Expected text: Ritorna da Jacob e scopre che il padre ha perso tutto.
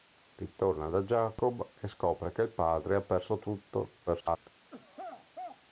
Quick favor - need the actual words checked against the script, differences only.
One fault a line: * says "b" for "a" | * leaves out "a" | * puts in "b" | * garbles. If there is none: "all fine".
* garbles